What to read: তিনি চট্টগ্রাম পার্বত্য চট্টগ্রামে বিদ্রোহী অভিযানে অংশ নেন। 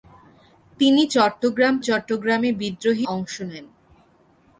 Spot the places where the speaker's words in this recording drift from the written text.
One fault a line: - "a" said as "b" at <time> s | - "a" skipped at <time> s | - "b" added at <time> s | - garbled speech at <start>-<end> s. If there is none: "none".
- "পার্বত্য" skipped at 1.8 s
- "অভিযানে" skipped at 3.1 s